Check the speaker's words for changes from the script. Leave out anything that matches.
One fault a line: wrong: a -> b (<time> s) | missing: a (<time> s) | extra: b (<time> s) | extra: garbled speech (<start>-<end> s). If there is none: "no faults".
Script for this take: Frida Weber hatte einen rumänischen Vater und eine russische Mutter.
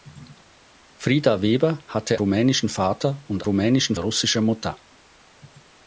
missing: einen (2.2 s)
wrong: eine -> rumänischen (3.4 s)